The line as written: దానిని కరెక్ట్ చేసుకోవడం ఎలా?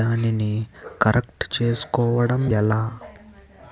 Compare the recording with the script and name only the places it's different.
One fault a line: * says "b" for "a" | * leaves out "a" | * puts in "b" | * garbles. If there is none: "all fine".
all fine